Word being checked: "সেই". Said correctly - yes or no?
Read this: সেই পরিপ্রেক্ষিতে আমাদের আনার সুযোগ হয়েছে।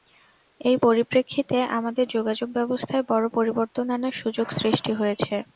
no